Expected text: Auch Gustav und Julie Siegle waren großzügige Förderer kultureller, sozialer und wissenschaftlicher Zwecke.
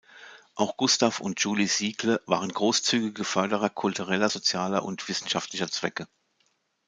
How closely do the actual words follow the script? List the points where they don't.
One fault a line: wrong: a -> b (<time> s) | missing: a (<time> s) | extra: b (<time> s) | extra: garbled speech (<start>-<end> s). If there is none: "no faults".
no faults